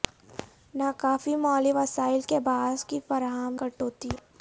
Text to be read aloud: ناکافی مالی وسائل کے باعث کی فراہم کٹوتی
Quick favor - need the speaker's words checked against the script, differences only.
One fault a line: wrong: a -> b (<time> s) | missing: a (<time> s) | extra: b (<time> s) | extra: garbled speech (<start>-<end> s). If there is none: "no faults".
no faults